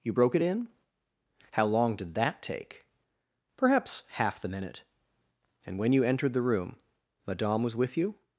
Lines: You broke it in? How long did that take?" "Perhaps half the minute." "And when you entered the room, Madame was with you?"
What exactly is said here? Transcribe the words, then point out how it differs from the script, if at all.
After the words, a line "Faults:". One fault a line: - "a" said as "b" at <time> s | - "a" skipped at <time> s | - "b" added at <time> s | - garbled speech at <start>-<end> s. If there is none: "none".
You broke it in? How long did that take?" "Perhaps half the minute." "And when you entered the room, Madame was with you?"
Faults:
none